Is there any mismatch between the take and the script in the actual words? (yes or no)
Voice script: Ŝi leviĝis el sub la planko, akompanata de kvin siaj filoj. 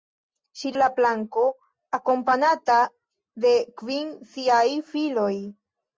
yes